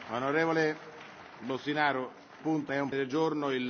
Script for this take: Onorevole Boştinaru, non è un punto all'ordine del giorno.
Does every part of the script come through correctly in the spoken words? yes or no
no